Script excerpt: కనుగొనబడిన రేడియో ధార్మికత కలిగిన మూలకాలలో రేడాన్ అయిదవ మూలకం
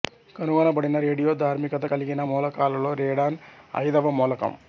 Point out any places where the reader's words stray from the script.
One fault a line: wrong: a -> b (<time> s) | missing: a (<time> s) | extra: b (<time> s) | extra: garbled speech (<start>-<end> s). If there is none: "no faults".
no faults